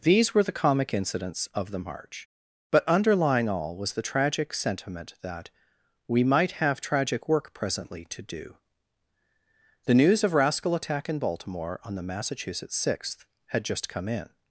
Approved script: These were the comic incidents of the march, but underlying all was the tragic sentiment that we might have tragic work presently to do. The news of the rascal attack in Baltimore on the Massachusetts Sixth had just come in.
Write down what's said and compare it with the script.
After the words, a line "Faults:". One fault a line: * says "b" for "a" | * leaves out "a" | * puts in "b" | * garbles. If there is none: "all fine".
These were the comic incidents of the march, but underlying all was the tragic sentiment that we might have tragic work presently to do. The news of rascal attack in Baltimore on the Massachusetts Sixth had just come in.
Faults:
* leaves out "the"